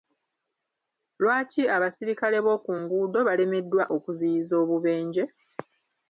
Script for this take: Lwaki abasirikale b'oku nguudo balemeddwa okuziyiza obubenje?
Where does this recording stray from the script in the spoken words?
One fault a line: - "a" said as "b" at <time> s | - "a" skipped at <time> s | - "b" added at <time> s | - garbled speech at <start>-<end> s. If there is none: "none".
none